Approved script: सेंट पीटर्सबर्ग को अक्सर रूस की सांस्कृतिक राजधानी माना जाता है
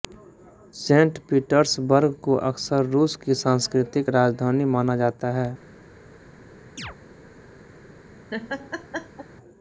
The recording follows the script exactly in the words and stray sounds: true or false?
false